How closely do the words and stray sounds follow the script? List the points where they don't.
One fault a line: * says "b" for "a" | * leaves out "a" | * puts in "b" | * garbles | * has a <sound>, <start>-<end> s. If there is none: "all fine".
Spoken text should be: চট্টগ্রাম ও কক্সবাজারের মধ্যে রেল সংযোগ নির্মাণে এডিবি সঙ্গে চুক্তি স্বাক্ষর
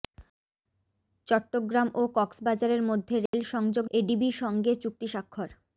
* has a dropout, 3.3-3.3 s
* leaves out "নির্মাণে"